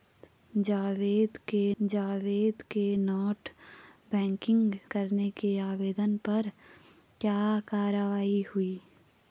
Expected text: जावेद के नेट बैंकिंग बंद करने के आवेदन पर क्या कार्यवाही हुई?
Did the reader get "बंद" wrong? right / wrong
wrong